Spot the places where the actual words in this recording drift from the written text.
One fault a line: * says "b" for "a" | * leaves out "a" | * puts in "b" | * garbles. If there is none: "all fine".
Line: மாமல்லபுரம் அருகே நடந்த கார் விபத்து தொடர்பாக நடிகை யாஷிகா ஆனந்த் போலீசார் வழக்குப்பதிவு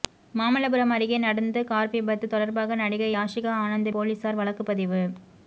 all fine